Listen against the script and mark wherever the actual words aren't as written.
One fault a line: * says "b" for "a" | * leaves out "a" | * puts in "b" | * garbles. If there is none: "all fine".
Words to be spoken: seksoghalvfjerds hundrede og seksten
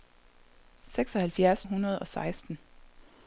all fine